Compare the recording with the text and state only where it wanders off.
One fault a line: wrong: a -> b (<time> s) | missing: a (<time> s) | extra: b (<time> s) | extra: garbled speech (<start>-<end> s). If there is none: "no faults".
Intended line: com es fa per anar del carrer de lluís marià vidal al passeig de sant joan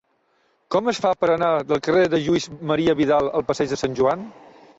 no faults